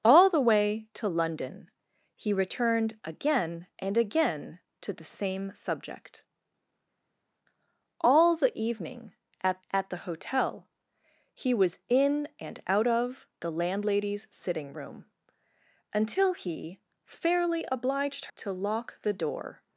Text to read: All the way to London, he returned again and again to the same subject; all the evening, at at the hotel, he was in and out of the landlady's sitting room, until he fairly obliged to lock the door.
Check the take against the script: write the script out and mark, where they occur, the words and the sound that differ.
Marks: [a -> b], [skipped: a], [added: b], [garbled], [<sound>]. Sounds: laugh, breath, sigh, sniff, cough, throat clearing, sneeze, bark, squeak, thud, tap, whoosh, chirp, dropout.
All the way to London, he returned again and again to the same subject; all the evening, at at the hotel, he was in and out of the landlady's sitting room, until he fairly obliged to lock the door.